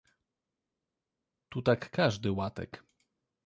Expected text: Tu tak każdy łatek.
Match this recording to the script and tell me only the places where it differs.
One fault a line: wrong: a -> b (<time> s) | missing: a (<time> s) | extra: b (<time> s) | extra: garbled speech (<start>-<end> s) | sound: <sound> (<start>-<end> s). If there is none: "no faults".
no faults